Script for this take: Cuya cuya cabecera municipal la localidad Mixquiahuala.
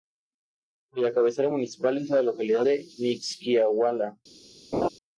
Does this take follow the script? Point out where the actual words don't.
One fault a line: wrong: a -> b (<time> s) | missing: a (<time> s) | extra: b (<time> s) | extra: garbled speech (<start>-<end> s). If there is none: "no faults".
missing: cuya (1.1 s)
extra: es (2.0 s)
extra: de (2.6 s)